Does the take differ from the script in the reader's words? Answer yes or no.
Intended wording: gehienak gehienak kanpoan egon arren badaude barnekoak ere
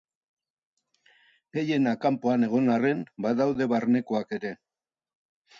yes